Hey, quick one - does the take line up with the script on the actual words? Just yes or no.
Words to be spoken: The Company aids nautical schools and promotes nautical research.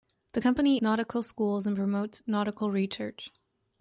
no